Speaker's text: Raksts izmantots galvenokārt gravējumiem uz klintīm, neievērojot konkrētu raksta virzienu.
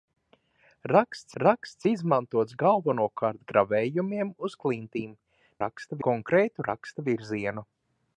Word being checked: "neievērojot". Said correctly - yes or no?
no